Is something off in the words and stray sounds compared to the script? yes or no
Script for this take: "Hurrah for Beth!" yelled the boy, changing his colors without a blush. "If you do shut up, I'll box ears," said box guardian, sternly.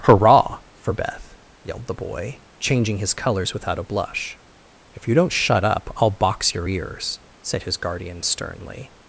yes